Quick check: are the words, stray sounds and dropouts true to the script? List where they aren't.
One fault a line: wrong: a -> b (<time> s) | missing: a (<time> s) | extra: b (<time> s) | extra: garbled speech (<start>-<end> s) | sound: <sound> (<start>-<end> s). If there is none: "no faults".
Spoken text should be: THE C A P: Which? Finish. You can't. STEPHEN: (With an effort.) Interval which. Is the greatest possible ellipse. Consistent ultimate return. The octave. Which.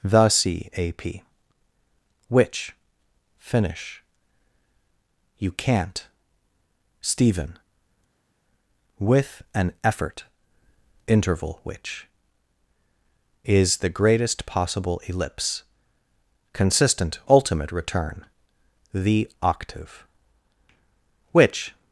no faults